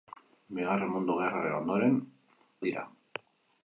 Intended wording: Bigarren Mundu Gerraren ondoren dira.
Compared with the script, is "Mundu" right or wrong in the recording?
right